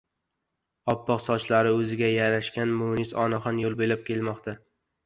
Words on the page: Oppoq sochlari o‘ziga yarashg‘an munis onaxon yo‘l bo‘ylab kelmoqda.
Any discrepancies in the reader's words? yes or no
no